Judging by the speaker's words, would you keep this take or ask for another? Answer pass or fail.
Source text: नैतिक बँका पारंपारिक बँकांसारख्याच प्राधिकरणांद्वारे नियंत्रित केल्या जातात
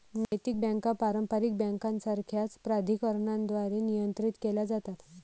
pass